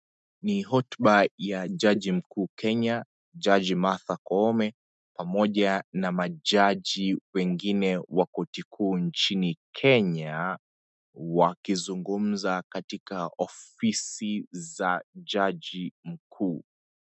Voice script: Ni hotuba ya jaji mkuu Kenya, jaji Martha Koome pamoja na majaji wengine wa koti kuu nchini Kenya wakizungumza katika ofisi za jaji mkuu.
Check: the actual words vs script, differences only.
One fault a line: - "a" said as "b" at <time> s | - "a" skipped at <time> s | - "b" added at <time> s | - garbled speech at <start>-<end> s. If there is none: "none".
none